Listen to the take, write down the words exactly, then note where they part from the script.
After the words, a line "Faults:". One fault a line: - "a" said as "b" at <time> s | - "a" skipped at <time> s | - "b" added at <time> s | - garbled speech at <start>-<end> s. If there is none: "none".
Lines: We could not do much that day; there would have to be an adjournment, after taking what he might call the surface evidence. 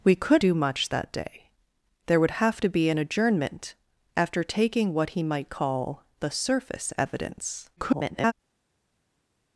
We could do much that day; there would have to be an adjournment, after taking what he might call the surface evidence. [garbled]
Faults:
- "not" skipped at 0.4 s
- garbled speech at 7.8-8.3 s